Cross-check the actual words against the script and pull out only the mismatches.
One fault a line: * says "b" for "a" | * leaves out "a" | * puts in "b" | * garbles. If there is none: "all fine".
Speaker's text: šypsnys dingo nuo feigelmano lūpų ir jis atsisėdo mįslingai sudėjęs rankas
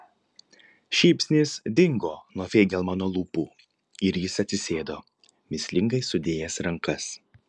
all fine